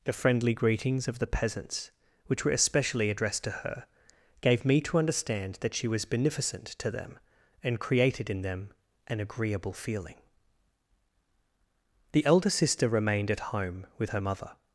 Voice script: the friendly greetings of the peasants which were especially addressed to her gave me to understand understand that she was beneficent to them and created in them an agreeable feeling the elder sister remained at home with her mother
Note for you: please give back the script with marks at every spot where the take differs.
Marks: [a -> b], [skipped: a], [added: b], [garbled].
the friendly greetings of the peasants which were especially addressed to her gave me to understand [skipped: understand] that she was beneficent to them and created in them an agreeable feeling the elder sister remained at home with her mother